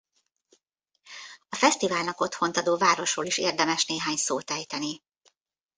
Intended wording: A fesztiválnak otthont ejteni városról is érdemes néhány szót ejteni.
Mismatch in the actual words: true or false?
true